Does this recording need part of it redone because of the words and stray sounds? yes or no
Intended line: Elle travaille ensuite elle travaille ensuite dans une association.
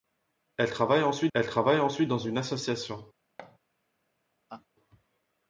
yes